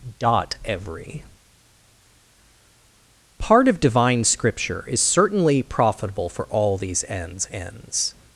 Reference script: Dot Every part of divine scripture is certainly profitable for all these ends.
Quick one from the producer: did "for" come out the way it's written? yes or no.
yes